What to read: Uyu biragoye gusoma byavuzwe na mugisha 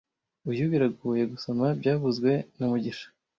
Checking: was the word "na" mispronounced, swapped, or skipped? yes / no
no